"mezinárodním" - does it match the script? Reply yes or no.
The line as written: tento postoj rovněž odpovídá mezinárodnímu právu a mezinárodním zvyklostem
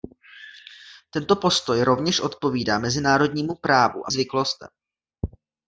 no